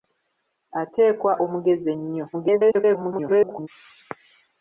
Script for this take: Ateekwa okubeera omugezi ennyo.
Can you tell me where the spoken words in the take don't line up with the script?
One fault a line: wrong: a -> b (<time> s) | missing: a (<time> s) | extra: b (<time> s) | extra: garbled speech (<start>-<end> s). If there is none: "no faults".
missing: okubeera (1.3 s)
extra: garbled speech (2.3-3.7 s)